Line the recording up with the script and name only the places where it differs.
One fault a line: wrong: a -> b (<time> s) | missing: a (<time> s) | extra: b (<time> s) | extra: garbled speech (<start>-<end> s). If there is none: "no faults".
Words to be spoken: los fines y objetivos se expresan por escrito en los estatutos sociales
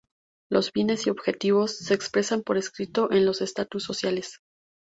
no faults